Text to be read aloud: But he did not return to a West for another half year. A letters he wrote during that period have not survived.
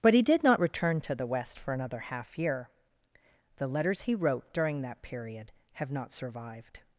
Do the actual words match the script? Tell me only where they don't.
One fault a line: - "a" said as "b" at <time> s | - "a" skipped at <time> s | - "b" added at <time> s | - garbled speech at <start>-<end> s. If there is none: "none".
- "a" said as "the" at 1.1 s
- "A" said as "The" at 3.6 s